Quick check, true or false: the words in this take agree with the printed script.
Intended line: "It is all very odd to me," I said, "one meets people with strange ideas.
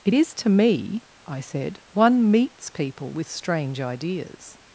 false